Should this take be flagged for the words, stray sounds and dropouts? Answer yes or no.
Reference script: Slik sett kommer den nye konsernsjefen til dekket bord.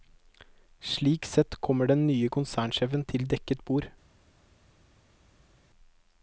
no